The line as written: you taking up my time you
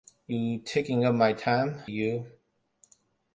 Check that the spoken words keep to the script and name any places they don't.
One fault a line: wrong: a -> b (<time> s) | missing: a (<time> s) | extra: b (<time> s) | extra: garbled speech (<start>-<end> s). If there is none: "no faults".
no faults